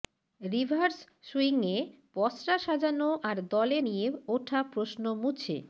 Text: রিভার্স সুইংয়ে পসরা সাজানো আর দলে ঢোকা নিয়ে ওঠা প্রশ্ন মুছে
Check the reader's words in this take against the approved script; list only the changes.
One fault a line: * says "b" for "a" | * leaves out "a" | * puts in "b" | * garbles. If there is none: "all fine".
* leaves out "ঢোকা"